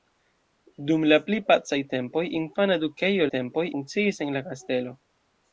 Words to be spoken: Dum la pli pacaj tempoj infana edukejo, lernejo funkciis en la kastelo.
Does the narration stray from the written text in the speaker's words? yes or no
yes